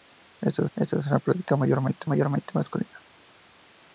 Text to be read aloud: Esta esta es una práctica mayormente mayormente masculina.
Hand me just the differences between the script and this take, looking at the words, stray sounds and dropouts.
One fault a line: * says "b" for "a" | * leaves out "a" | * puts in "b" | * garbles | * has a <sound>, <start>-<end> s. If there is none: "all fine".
all fine